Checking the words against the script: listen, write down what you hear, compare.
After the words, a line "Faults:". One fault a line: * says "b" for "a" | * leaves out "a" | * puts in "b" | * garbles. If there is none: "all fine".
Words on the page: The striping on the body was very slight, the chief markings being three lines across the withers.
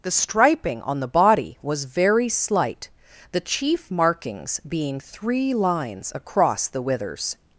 The striping on the body was very slight, the chief markings being three lines across the withers.
Faults:
all fine